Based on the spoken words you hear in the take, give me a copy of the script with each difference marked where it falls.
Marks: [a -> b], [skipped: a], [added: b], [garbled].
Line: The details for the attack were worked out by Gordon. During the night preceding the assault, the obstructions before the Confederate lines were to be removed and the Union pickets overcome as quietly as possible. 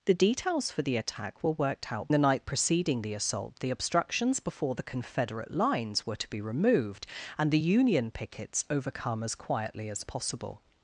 The details for the attack were worked out [skipped: by Gordon. During] the night preceding the assault, the obstructions before the Confederate lines were to be removed and the Union pickets overcome as quietly as possible.